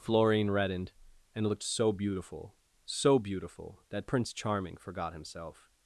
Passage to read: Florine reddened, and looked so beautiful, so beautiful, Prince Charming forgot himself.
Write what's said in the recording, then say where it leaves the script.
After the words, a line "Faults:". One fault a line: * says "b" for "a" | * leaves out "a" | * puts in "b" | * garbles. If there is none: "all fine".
Florine reddened, and looked so beautiful, so beautiful, that Prince Charming forgot himself.
Faults:
* puts in "that"